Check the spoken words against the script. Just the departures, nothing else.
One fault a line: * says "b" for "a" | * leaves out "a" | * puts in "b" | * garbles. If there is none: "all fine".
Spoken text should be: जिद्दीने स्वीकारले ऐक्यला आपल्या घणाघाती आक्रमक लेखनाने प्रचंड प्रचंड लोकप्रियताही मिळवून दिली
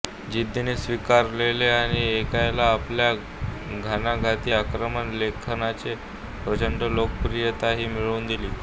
* puts in "आणि"
* leaves out "प्रचंड"